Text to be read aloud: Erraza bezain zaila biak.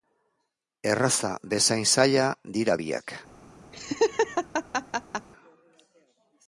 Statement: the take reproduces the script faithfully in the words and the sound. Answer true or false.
false